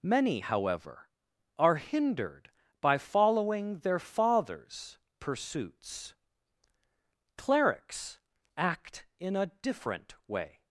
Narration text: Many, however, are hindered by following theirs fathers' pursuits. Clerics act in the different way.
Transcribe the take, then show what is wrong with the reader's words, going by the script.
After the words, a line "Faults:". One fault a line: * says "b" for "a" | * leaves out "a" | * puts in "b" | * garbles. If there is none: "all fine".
Many, however, are hindered by following their fathers' pursuits. Clerics act in a different way.
Faults:
* says "their" for "theirs"
* says "a" for "the"